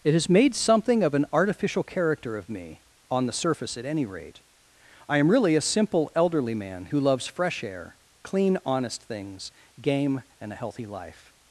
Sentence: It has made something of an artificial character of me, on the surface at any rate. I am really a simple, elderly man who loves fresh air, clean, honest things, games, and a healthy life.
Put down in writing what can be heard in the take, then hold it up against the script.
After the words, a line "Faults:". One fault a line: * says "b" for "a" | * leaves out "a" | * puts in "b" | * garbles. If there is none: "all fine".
It has made something of an artificial character of me, on the surface at any rate. I am really a simple, elderly man who loves fresh air, clean, honest things, game, and a healthy life.
Faults:
* says "game" for "games"